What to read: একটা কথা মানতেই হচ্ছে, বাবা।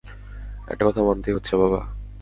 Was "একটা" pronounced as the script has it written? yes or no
yes